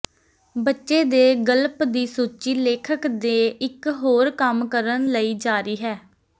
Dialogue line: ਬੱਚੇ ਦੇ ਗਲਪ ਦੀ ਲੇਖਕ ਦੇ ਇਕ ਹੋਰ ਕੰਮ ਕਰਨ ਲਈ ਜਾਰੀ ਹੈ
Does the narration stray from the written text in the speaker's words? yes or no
yes